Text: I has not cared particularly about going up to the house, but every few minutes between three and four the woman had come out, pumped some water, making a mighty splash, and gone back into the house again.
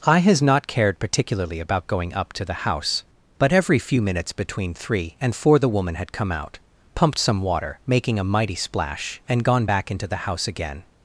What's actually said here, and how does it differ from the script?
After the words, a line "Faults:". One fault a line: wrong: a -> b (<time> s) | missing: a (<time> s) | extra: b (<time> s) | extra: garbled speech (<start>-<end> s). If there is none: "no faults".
I has not cared particularly about going up to the house, but every few minutes between three and four the woman had come out, pumped some water, making a mighty splash, and gone back into the house again.
Faults:
no faults